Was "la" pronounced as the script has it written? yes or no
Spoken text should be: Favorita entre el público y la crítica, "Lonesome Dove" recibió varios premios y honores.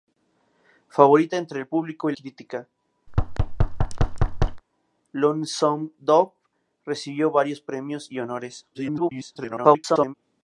no